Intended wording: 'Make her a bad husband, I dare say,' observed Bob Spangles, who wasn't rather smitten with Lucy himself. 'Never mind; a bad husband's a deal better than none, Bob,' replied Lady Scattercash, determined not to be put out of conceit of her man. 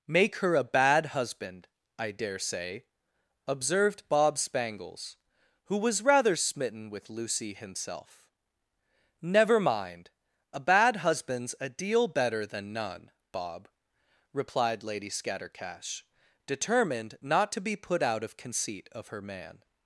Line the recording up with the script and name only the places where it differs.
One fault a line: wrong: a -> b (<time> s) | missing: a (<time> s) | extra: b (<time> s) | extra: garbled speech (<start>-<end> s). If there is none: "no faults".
wrong: wasn't -> was (5.8 s)